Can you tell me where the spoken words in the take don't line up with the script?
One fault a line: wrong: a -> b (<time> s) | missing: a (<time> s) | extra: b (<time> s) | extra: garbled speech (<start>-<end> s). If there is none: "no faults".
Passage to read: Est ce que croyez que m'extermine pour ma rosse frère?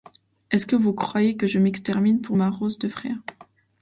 extra: vous (0.8 s)
extra: je (1.4 s)
extra: de (2.8 s)